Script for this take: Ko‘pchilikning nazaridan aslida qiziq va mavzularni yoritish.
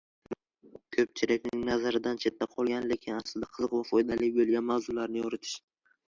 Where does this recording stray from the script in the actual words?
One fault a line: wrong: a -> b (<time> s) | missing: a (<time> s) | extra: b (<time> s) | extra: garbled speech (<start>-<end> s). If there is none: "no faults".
extra: chetda qolgan lekin (2.2 s)
extra: foydali bo‘lgan (3.9 s)